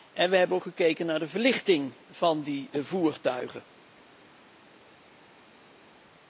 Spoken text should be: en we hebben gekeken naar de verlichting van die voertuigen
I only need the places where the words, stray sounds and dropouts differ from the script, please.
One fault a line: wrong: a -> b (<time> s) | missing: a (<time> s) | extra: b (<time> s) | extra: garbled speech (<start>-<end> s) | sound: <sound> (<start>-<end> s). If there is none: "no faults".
no faults